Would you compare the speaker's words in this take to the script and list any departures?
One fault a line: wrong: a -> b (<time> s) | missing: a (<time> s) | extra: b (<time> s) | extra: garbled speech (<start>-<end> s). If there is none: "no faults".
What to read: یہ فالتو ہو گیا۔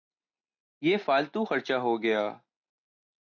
extra: خرچہ (1.4 s)